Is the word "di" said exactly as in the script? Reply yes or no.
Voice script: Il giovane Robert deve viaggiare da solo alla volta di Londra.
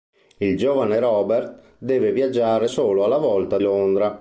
no